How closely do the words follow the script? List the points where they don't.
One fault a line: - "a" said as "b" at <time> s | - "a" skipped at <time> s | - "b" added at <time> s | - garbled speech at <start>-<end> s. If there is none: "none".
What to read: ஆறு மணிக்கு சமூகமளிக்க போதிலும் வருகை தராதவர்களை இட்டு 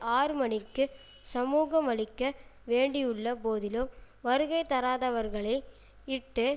- "வேண்டியுள்ள" added at 2.7 s